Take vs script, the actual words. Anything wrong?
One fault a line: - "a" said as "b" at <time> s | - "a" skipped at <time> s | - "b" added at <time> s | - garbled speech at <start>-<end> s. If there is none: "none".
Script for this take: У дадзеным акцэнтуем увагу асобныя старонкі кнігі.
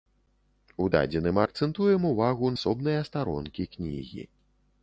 none